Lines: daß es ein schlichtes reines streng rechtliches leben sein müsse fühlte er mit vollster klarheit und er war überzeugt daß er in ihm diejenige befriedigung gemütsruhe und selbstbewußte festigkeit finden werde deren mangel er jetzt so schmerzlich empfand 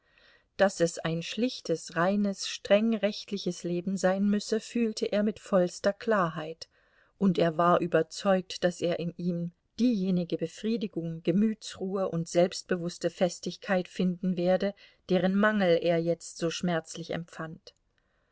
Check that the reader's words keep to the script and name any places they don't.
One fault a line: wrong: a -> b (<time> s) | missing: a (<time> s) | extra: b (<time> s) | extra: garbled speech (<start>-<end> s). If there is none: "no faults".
no faults